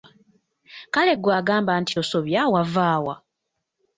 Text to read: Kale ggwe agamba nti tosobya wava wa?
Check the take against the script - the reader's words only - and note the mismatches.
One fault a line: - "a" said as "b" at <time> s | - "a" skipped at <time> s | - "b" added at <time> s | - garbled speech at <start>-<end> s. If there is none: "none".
none